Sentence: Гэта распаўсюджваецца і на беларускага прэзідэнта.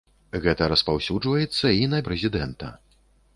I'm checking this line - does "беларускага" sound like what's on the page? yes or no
no